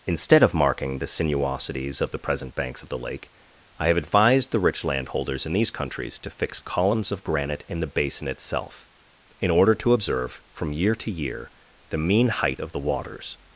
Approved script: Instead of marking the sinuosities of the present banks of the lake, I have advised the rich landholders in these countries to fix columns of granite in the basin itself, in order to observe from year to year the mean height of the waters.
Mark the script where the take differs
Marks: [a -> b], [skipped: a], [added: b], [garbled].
Instead of marking the sinuosities of the present banks of the lake, I have advised the rich landholders in these countries to fix columns of granite in the basin itself, in order to observe from year to year the mean height of the waters.